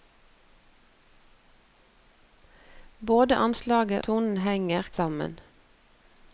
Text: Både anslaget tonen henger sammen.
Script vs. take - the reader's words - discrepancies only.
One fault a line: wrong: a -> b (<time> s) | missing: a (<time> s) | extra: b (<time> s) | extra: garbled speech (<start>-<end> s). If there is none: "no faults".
no faults